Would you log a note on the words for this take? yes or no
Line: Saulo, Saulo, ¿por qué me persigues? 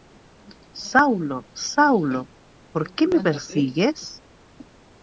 no